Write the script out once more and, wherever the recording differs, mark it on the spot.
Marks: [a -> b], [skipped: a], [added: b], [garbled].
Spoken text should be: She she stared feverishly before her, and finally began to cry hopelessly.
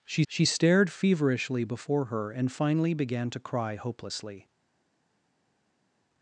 She she stared feverishly before her, and finally began to cry hopelessly.